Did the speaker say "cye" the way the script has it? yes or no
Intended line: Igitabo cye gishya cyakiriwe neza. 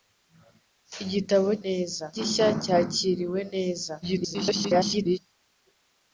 no